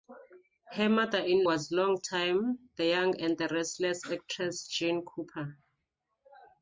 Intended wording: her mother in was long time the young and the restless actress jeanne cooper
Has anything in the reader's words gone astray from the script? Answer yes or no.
no